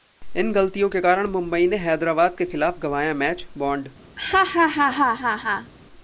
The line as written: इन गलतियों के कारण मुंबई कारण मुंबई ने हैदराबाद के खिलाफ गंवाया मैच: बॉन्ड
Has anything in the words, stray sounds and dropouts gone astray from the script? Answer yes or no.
yes